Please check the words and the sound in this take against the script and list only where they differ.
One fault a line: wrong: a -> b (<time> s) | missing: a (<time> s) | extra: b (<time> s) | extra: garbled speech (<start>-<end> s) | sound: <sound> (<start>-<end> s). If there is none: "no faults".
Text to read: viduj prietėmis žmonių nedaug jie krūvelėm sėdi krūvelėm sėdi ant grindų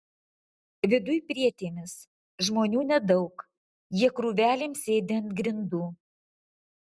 missing: krūvelėm sėdi (5.2 s)